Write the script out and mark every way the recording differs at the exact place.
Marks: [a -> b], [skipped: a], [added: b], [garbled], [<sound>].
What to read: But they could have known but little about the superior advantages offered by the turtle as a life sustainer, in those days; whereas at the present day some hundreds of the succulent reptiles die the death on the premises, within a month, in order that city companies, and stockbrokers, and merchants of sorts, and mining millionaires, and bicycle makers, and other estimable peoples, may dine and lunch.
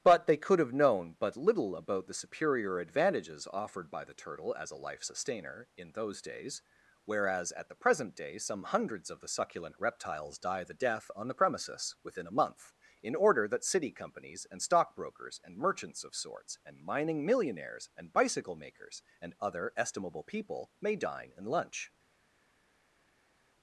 But they could have known but little about the superior advantages offered by the turtle as a life sustainer, in those days; whereas at the present day some hundreds of the succulent reptiles die the death on the premises, within a month, in order that city companies, and stockbrokers, and merchants of sorts, and mining millionaires, and bicycle makers, and other estimable [peoples, -> people] may dine and lunch.